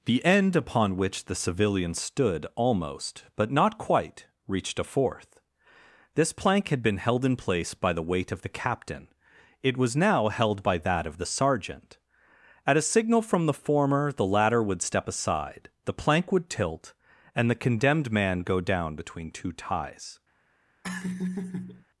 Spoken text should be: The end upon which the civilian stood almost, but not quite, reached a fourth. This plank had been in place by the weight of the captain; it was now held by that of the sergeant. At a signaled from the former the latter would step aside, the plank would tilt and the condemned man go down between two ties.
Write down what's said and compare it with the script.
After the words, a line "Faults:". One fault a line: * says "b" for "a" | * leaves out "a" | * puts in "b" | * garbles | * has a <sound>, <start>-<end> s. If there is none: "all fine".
The end upon which the civilian stood almost, but not quite, reached a fourth. This plank had been held in place by the weight of the captain; it was now held by that of the sergeant. At a signal from the former the latter would step aside, the plank would tilt and the condemned man go down between two ties.
Faults:
* puts in "held"
* says "signal" for "signaled"
* has a laugh, 20.8-21.8 s